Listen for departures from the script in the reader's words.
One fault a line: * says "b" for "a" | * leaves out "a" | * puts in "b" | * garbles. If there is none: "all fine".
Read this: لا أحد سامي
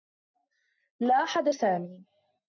all fine